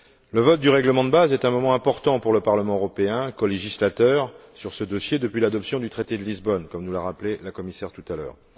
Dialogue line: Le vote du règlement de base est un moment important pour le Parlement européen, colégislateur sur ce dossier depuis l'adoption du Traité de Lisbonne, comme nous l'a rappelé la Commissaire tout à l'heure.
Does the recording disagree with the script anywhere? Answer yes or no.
no